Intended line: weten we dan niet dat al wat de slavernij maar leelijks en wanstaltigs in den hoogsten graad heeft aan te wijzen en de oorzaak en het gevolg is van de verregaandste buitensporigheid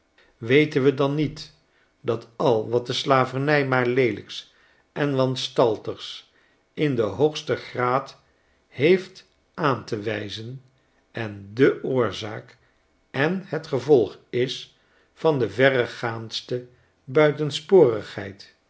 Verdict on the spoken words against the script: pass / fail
pass